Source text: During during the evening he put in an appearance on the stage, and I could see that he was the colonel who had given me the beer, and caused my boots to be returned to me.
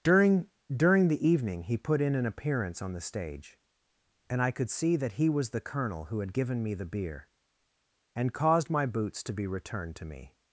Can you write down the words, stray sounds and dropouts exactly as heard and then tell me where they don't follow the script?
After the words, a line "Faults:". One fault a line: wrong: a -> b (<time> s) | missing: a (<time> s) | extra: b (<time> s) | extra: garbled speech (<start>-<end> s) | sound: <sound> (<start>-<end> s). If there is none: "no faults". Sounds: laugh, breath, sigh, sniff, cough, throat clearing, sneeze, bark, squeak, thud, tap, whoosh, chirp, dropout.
During during the evening he put in an appearance on the stage, and I could see that he was the colonel who had given me the beer, and caused my boots to be returned to me.
Faults:
no faults